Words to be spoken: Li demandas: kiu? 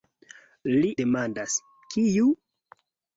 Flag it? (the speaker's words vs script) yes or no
no